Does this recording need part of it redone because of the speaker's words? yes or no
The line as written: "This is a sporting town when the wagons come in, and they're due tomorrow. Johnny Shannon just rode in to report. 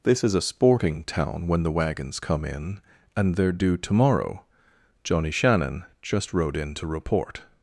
no